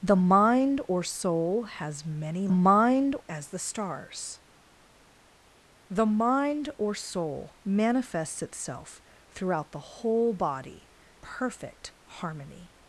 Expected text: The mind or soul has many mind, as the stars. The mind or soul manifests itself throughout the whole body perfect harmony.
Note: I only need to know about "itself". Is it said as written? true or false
true